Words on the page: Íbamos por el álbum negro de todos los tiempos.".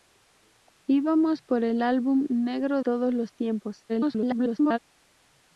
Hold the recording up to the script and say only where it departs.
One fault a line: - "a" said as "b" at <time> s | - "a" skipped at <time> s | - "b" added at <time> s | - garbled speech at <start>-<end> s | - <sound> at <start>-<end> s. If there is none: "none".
- "de" skipped at 2.8 s
- garbled speech at 3.9-4.8 s